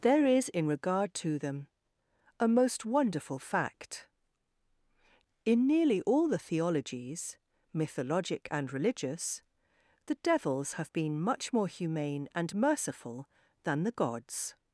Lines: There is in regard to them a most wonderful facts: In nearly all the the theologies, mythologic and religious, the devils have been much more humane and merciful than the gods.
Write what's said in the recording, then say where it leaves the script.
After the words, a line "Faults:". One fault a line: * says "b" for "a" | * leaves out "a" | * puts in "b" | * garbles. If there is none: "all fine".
There is in regard to them a most wonderful fact: In nearly all the theologies, mythologic and religious, the devils have been much more humane and merciful than the gods.
Faults:
* says "fact" for "facts"
* leaves out "the"